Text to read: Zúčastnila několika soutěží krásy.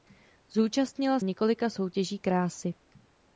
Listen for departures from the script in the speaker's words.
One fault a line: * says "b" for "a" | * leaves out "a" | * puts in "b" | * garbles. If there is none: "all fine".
all fine